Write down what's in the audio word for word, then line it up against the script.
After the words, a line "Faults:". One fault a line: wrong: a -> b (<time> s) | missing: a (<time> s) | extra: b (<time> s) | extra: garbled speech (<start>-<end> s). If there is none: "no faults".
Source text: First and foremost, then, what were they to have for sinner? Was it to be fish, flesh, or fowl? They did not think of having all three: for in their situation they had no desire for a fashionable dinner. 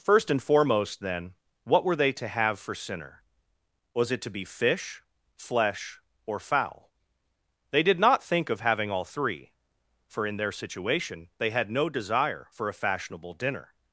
First and foremost, then, what were they to have for sinner? Was it to be fish, flesh, or fowl? They did not think of having all three: for in their situation they had no desire for a fashionable dinner.
Faults:
no faults